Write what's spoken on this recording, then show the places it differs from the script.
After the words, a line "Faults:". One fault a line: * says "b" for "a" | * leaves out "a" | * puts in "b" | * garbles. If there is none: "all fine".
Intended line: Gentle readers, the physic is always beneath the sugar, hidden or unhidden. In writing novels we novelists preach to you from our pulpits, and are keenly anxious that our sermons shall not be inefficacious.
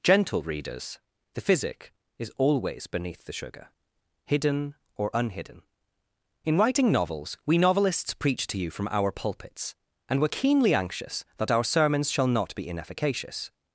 Gentle readers, the physic is always beneath the sugar, hidden or unhidden. In writing novels we novelists preach to you from our pulpits, and were keenly anxious that our sermons shall not be inefficacious.
Faults:
* says "were" for "are"